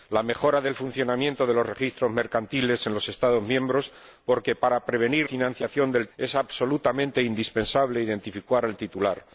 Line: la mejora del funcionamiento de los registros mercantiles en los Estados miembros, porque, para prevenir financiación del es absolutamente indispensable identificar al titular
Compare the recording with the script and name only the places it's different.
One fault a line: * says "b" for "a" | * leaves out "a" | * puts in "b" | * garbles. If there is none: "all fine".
all fine